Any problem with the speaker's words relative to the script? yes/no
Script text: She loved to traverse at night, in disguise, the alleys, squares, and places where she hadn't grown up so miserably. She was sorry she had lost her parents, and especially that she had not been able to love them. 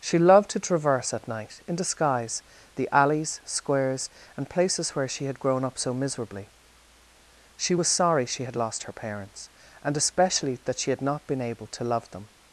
yes